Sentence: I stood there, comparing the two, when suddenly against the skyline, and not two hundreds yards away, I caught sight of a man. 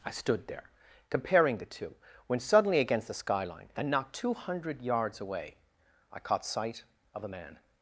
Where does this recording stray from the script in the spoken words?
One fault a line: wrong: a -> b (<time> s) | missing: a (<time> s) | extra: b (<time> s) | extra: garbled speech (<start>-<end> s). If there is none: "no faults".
wrong: hundreds -> hundred (4.3 s)